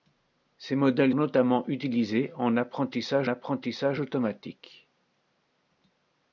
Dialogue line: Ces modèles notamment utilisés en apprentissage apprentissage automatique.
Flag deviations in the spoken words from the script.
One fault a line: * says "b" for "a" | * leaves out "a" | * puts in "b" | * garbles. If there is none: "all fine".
all fine